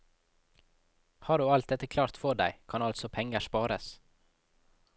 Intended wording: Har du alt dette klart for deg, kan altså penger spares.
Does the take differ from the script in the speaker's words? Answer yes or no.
no